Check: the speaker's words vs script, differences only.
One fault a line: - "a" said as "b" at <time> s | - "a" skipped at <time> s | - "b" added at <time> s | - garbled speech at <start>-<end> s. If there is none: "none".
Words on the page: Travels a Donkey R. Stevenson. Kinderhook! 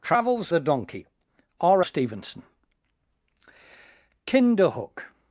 none